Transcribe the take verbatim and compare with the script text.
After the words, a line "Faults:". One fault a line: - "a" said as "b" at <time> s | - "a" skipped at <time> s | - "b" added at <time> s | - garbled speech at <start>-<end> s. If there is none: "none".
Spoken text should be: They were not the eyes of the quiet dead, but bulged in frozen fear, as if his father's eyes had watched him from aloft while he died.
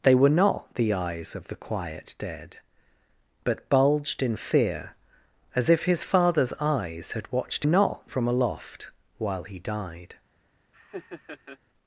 They were not the eyes of the quiet dead, but bulged in fear, as if his father's eyes had watched not from aloft while he died.
Faults:
- "frozen" skipped at 4.3 s
- "him" said as "not" at 7.6 s